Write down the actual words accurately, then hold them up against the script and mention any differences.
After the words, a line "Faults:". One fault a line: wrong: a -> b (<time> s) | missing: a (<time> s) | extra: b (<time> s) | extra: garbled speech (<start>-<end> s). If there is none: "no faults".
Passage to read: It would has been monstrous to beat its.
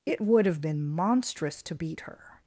It would have been monstrous to beat her.
Faults:
wrong: has -> have (0.5 s)
wrong: its -> her (2.0 s)